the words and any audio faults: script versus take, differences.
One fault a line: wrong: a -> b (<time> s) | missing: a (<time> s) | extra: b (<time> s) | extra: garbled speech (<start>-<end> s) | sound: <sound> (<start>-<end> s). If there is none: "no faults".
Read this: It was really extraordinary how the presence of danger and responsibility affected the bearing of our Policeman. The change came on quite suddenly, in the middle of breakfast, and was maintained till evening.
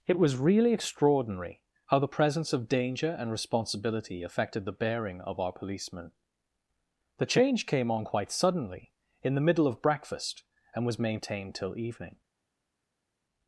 no faults